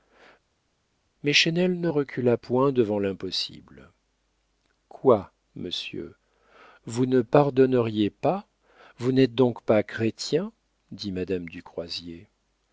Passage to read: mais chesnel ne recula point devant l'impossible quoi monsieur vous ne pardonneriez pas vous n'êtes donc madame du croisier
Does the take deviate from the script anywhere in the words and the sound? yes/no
yes